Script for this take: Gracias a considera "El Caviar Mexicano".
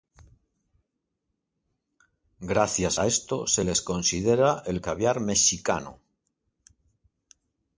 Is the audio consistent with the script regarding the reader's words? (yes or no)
no